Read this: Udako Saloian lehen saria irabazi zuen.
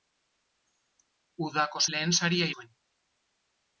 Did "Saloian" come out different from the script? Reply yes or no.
yes